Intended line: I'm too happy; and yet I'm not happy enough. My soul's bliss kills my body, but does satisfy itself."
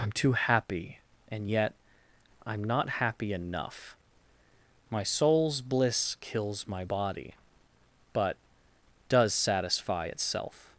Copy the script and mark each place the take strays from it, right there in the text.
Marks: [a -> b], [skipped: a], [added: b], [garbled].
I'm too happy; and yet I'm not happy enough. My soul's bliss kills my body, but does satisfy itself."